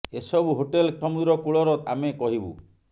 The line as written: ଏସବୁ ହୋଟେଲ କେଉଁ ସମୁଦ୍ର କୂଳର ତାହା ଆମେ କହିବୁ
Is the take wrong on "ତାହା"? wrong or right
wrong